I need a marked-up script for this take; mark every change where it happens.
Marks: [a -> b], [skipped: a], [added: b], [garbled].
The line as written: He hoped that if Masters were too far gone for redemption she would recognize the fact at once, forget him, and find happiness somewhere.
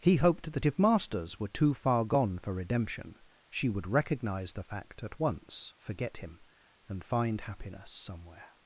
He hoped that if Masters were too far gone for redemption she would recognize the fact at once, forget him, and find happiness somewhere.